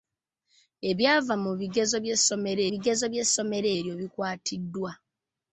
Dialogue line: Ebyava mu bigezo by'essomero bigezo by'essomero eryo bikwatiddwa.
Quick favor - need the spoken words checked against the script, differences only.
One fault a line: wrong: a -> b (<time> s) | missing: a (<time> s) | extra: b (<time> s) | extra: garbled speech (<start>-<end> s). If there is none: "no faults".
no faults